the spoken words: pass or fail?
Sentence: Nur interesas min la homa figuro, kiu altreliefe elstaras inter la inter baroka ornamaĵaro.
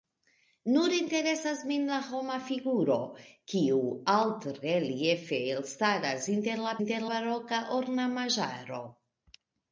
pass